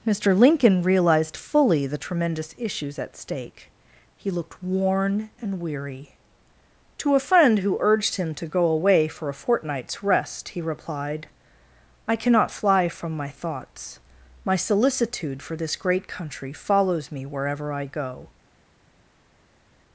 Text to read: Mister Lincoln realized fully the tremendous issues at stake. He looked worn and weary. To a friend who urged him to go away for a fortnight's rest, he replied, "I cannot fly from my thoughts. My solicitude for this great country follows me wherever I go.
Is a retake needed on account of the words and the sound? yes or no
no